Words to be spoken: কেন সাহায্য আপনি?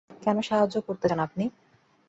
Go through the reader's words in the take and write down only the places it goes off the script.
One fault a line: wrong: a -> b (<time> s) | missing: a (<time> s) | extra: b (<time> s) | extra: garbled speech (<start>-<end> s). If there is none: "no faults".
extra: করতে চান (0.9 s)